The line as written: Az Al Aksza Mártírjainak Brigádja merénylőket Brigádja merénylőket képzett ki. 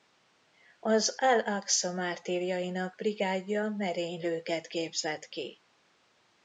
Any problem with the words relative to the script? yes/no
yes